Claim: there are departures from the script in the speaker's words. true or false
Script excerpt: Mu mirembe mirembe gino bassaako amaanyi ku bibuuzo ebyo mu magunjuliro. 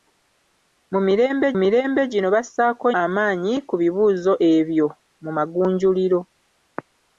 false